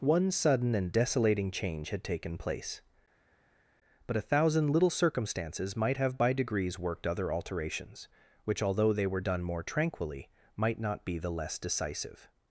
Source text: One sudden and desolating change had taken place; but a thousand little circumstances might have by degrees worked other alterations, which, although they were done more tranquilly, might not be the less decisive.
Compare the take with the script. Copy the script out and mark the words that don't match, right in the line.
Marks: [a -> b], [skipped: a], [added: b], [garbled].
One sudden and desolating change had taken place; but a thousand little circumstances might have by degrees worked other alterations, which, although they were done more tranquilly, might not be the less decisive.